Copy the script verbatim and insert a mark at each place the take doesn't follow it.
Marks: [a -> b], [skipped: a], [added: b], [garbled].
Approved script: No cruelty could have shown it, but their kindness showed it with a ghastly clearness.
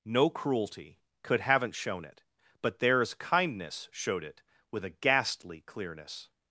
No cruelty could [have -> haven't] shown it, but [their -> theirs] kindness showed it with a ghastly clearness.